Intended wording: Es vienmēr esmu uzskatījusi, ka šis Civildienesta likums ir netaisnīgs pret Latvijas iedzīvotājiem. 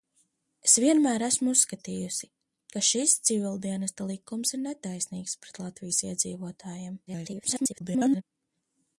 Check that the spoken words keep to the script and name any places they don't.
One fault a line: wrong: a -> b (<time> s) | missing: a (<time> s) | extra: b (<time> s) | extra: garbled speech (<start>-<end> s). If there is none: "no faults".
extra: garbled speech (7.1-8.2 s)